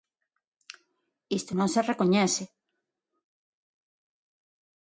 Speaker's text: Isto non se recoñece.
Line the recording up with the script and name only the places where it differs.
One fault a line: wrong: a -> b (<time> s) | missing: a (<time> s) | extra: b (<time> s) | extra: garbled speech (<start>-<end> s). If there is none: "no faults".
no faults